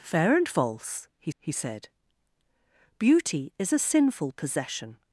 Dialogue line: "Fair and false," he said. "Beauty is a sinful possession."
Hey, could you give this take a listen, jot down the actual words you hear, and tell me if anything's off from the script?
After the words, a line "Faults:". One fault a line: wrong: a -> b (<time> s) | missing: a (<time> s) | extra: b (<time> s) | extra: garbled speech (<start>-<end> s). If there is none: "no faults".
"Fair and false," he he said. "Beauty is a sinful possession."
Faults:
extra: he (1.4 s)